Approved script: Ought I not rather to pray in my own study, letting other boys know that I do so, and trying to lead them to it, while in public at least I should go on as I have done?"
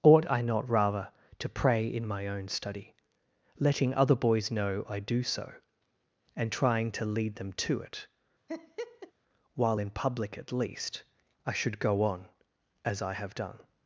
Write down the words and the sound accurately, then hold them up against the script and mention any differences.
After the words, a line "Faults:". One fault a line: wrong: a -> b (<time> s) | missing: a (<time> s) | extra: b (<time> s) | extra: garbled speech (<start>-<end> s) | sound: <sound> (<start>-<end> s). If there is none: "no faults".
Ought I not rather to pray in my own study, letting other boys know I do so, and trying to lead them to it, while in public at least I should go on as I have done?"
Faults:
missing: that (4.8 s)
sound: laugh (8.5-9.1 s)